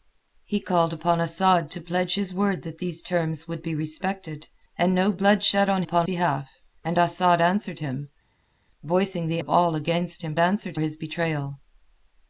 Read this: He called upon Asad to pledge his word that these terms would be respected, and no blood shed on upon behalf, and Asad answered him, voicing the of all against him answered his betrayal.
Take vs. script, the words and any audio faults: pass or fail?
pass